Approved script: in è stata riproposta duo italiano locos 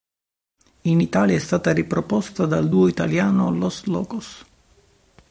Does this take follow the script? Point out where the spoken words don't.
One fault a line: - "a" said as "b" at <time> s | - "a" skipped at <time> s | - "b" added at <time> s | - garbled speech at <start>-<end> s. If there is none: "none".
- "italia" added at 1.0 s
- "dal" added at 2.5 s
- "los" added at 3.5 s